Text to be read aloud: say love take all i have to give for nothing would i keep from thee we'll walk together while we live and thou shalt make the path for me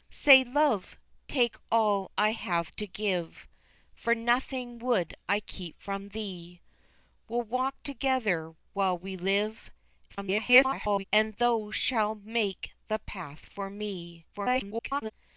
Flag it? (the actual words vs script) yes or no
yes